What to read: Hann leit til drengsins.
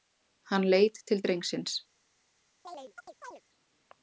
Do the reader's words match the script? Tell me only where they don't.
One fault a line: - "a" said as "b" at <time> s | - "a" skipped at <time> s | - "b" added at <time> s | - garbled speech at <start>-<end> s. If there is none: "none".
none